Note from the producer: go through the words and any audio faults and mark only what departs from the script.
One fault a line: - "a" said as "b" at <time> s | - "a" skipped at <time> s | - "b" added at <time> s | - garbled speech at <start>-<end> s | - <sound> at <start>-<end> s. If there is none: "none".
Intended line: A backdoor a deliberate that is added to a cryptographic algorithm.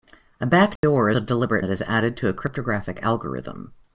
- dropout at 0.8-0.8 s